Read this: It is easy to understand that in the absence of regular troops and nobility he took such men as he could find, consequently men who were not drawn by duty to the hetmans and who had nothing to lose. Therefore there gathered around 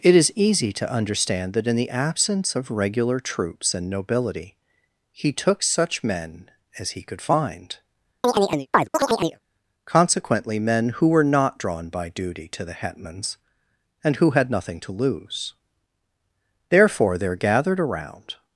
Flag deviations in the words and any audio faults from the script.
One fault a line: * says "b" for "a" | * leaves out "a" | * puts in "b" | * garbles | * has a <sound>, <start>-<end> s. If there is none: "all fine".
* has a chirp, 8.2-9.4 s